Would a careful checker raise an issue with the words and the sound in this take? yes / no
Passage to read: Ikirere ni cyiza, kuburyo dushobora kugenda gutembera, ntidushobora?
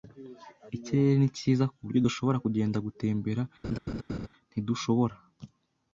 yes